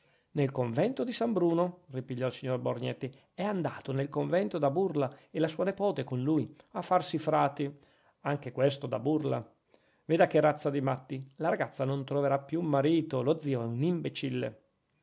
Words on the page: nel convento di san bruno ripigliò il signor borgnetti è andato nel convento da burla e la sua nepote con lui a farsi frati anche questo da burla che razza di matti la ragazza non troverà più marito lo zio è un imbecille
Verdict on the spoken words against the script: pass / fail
fail